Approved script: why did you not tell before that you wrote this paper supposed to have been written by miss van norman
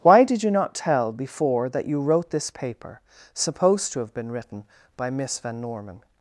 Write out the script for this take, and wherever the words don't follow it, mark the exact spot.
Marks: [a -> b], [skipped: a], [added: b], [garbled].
why did you not tell before that you wrote this paper supposed to have been written by miss van norman